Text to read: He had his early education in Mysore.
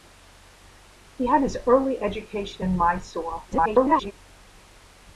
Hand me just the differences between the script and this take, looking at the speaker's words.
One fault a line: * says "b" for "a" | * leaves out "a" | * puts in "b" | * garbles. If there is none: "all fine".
* garbles